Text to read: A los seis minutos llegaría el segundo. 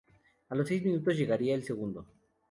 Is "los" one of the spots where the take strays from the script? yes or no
no